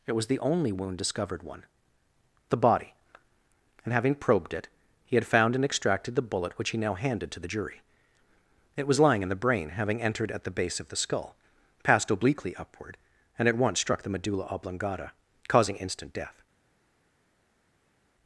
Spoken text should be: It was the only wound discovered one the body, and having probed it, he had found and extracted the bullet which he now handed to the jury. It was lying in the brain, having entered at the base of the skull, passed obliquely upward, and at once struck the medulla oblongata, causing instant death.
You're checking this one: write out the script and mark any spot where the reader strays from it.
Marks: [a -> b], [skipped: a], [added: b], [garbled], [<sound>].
It was the only wound discovered one the body, and having probed it, he had found and extracted the bullet which he now handed to the jury. It was lying in the brain, having entered at the base of the skull, passed obliquely upward, and at once struck the medulla oblongata, causing instant death.